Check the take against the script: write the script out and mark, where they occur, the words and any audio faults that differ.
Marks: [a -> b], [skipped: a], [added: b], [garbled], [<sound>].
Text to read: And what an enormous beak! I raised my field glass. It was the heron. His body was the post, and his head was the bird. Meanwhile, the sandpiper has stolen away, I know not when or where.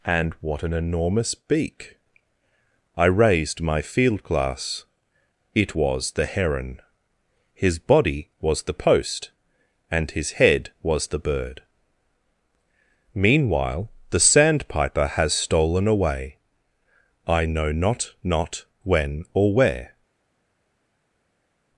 And what an enormous beak! I raised my field glass. It was the heron. His body was the post, and his head was the bird. Meanwhile, the sandpiper has stolen away, I know not [added: not] when or where.